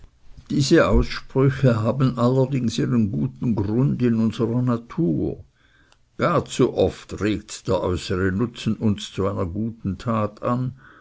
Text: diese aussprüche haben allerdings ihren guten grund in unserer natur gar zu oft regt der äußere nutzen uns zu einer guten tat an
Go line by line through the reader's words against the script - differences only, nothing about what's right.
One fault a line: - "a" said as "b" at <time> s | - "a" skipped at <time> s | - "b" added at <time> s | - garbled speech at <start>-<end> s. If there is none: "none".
none